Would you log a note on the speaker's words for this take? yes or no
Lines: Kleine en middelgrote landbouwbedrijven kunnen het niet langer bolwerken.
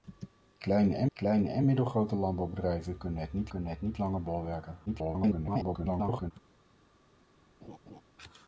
yes